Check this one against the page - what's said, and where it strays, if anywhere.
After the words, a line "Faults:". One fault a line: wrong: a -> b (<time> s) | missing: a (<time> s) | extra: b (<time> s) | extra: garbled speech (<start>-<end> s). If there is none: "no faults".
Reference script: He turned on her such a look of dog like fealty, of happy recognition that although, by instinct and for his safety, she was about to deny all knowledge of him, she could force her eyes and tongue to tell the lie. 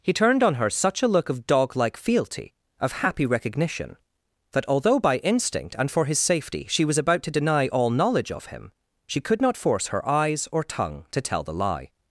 He turned on her such a look of dog like fealty, of happy recognition that although, by instinct and for his safety, she was about to deny all knowledge of him, she could not force her eyes or tongue to tell the lie.
Faults:
extra: not (9.4 s)
wrong: and -> or (10.5 s)